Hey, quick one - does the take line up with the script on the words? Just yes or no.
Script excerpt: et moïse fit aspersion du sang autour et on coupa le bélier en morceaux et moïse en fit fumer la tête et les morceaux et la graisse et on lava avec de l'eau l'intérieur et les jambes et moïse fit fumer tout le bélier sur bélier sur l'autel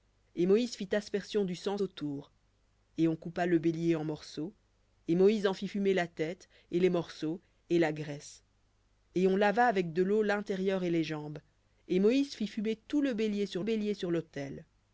yes